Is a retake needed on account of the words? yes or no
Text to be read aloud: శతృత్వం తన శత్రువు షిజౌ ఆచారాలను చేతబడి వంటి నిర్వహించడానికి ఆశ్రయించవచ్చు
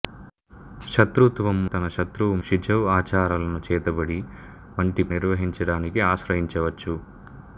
no